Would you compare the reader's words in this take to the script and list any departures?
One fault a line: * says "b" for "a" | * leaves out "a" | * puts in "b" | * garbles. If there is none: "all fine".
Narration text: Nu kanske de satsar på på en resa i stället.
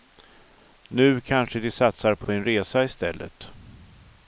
all fine